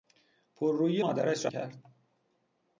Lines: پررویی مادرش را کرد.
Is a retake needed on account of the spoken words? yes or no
no